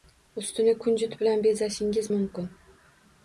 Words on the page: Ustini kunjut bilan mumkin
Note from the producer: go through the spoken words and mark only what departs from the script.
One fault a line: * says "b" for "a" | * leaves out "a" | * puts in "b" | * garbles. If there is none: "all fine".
* puts in "bezashingiz"